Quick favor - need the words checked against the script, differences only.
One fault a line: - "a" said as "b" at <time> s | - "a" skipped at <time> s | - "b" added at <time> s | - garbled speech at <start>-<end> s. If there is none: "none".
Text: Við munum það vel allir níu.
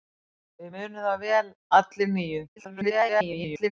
- garbled speech at 2.6-3.7 s